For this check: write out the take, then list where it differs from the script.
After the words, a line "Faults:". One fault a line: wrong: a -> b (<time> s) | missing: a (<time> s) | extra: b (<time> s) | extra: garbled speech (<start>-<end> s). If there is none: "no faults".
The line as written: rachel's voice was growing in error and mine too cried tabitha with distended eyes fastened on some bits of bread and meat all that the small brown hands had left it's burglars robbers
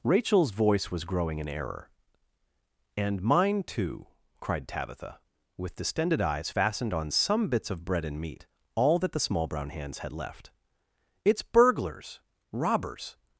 rachel's voice was growing in error and mine too cried tabitha with distended eyes fastened on some bits of bread and meat all that the small brown hands had left it's burglars robbers
Faults:
no faults